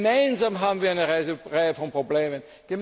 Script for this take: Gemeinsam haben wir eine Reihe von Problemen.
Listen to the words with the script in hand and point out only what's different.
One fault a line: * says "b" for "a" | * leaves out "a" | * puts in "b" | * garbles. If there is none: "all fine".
all fine